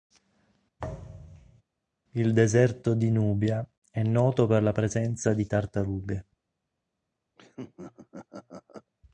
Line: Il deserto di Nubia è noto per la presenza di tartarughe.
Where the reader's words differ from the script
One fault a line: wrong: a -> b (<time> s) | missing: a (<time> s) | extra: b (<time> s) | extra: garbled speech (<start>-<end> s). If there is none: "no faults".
no faults